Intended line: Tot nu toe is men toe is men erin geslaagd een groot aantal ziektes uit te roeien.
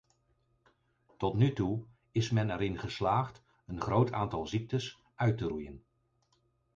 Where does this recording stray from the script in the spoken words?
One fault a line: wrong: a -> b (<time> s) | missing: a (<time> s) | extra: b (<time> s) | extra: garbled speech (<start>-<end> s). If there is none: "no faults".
missing: toe is men (2.5 s)